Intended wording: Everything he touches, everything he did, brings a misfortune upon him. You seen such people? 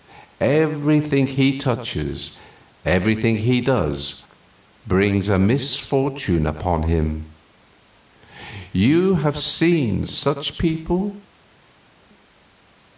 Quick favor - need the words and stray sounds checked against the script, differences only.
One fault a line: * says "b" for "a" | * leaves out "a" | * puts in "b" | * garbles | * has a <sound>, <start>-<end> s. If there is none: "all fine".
* says "does" for "did"
* puts in "have"